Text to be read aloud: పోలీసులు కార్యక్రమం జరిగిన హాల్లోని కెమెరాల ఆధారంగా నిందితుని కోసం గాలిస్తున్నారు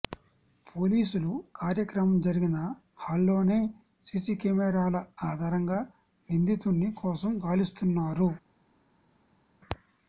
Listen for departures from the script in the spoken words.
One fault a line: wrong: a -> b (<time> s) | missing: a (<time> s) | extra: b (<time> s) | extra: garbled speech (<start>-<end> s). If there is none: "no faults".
extra: సీసీ (4.1 s)